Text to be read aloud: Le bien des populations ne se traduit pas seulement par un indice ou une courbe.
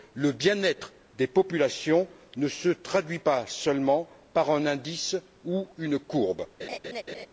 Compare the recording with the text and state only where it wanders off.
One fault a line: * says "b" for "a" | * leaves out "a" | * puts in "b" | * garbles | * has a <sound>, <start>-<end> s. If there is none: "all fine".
* puts in "être"
* has a laugh, 6.6-7.3 s